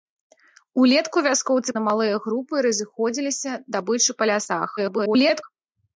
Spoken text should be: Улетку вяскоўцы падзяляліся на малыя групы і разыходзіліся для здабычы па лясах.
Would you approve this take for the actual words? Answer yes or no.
no